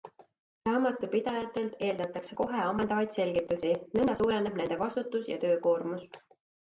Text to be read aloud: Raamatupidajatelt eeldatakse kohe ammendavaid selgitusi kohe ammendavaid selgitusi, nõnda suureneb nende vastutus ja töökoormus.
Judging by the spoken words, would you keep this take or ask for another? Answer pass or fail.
fail